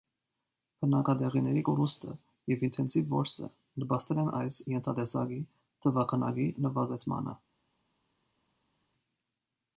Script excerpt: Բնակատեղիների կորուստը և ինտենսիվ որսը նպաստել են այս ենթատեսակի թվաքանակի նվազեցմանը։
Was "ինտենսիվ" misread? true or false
false